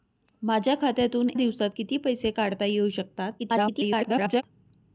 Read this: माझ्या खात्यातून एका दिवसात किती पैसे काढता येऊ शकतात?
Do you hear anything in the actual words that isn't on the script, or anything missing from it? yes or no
yes